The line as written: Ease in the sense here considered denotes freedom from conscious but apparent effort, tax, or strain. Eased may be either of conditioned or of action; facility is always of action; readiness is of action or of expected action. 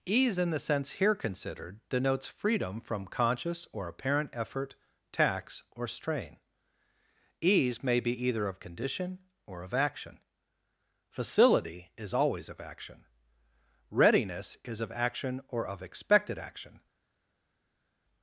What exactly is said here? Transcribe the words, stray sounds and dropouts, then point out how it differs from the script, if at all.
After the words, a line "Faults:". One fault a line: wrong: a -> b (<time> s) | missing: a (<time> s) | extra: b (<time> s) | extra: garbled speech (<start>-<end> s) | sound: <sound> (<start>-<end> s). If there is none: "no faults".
Ease in the sense here considered denotes freedom from conscious or apparent effort, tax, or strain. Ease may be either of condition or of action; facility is always of action; readiness is of action or of expected action.
Faults:
wrong: but -> or (3.7 s)
wrong: Eased -> Ease (7.4 s)
wrong: conditioned -> condition (8.6 s)